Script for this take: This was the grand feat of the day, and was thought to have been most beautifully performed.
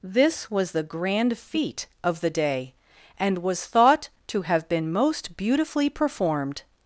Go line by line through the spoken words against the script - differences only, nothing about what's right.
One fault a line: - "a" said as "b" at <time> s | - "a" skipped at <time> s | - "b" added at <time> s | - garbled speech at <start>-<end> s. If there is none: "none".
none